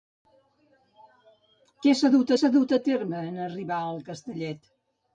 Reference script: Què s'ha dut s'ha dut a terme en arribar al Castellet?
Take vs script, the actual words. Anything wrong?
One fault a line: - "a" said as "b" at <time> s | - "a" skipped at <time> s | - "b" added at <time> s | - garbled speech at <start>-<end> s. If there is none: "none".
none